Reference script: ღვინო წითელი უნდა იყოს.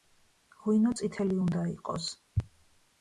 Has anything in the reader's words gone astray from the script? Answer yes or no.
no